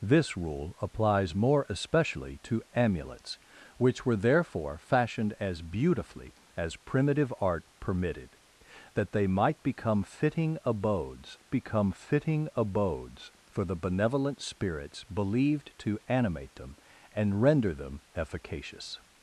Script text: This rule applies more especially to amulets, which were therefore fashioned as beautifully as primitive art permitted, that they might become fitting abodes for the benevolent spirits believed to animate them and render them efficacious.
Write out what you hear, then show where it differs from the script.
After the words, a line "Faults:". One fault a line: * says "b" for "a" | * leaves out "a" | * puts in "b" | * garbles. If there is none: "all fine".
This rule applies more especially to amulets, which were therefore fashioned as beautifully as primitive art permitted, that they might become fitting abodes become fitting abodes for the benevolent spirits believed to animate them and render them efficacious.
Faults:
* puts in "become fitting abodes"